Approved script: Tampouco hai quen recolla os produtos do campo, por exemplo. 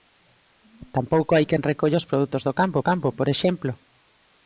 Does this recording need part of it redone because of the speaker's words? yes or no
yes